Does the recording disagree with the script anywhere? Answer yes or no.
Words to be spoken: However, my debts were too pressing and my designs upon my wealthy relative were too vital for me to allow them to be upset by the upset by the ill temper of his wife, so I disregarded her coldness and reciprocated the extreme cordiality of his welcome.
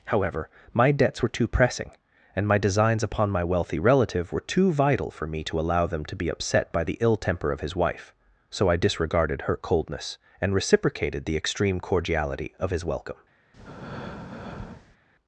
yes